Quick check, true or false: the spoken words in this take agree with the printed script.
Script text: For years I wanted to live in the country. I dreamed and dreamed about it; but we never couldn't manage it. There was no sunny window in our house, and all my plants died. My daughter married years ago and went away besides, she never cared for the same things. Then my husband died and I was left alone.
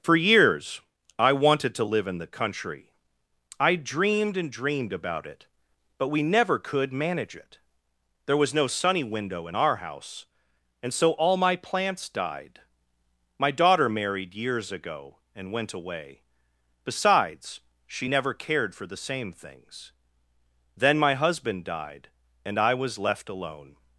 false